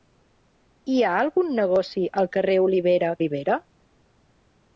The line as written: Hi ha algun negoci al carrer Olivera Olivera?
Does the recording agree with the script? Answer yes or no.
yes